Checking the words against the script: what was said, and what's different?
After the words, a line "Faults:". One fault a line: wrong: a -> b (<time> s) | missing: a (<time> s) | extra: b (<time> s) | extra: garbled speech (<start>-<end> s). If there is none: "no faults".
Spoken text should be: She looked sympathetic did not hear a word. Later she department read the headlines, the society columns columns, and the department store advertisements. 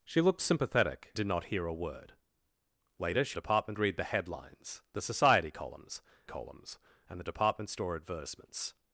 She looked sympathetic did not hear a word. Later she department read the headlines, the society columns columns, and the department store advertisements.
Faults:
no faults